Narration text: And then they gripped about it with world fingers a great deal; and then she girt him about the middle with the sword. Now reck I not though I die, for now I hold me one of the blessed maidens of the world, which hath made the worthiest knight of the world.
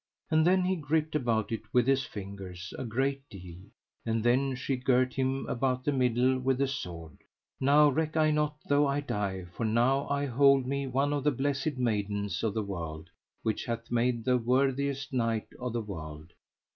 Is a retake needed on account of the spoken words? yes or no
yes